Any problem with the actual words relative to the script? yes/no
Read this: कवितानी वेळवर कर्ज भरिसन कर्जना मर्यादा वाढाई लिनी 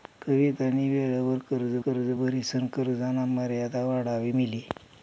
yes